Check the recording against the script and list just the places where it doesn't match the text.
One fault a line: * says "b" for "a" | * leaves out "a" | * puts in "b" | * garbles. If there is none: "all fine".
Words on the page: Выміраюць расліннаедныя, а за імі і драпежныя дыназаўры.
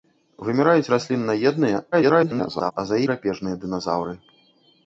* garbles
* leaves out "імі і"